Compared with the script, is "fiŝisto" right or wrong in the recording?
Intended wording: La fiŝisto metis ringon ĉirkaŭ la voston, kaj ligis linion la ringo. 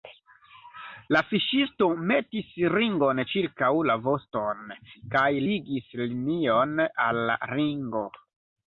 right